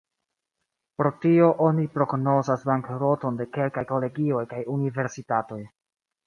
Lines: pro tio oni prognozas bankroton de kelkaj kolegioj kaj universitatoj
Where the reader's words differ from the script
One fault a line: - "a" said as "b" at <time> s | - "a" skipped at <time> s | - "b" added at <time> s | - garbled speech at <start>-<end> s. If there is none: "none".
none